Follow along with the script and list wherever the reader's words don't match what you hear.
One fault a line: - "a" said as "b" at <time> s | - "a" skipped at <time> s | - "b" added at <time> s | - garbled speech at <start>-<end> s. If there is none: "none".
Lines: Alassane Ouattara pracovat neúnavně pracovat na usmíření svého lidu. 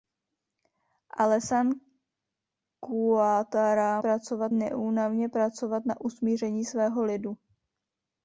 none